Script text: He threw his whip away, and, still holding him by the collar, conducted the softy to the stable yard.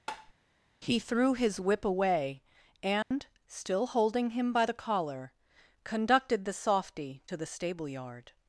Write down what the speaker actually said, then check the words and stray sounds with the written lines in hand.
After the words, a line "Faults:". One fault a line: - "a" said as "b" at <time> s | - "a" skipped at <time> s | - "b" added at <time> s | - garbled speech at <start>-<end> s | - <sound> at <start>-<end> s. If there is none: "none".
He threw his whip away, and, still holding him by the collar, conducted the softy to the stable yard.
Faults:
- tap at 0.1-0.3 s
- dropout at 3.0-3.1 s